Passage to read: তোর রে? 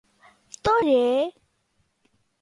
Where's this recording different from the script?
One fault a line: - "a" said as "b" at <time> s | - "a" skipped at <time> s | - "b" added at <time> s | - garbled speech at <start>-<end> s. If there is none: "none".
none